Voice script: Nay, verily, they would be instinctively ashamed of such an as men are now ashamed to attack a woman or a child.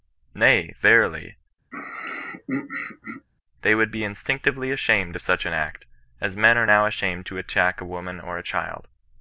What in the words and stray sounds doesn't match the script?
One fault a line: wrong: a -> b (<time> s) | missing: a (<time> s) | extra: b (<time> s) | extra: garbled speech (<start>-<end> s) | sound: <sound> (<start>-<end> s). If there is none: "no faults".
sound: throat clearing (1.7-3.3 s)
extra: act (5.5 s)